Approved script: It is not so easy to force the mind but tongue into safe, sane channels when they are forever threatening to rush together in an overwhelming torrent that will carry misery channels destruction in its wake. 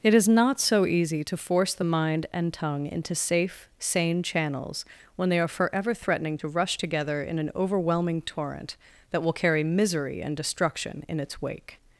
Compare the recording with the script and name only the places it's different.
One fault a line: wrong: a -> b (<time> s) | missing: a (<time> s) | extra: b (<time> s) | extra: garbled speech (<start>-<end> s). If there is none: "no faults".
wrong: but -> and (2.3 s)
wrong: channels -> and (10.2 s)